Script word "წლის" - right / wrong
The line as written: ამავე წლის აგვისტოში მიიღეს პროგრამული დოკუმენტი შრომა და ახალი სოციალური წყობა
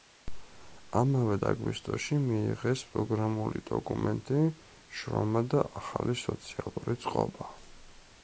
wrong